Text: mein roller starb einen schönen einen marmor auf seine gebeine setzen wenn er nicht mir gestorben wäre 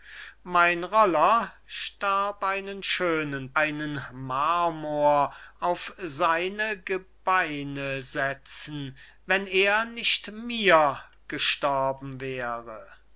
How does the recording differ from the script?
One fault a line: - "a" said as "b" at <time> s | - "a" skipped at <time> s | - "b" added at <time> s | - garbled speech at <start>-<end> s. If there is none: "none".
none